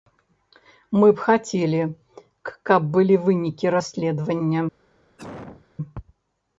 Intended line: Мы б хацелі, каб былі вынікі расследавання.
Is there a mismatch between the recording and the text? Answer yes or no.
no